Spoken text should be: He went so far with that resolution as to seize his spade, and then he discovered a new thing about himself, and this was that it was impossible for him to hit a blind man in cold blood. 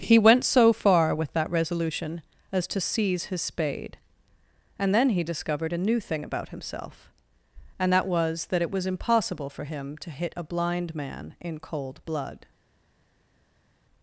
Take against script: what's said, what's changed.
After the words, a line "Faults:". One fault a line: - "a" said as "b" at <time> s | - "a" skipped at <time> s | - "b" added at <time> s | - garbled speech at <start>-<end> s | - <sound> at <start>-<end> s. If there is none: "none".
He went so far with that resolution as to seize his spade, and then he discovered a new thing about himself, and that was that it was impossible for him to hit a blind man in cold blood.
Faults:
- "this" said as "that" at 7.9 s